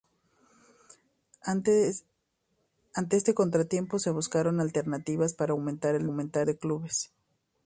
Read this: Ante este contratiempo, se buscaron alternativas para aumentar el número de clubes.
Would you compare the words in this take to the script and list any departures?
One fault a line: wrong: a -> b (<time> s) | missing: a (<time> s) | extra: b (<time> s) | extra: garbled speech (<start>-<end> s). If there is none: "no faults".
wrong: número -> aumentar (6.0 s)